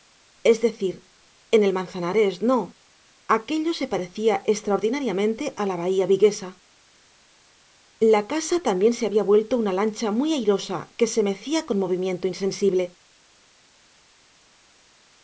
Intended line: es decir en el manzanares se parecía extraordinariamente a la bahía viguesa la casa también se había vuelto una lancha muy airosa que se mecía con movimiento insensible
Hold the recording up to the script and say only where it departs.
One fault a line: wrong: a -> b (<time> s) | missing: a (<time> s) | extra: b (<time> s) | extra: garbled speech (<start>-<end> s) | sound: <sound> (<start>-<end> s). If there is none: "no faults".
extra: no aquello (2.4 s)